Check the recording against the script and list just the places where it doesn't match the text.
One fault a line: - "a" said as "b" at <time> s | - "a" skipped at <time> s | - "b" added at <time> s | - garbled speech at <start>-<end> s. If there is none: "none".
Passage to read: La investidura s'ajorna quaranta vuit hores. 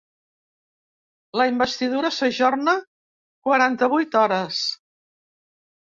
none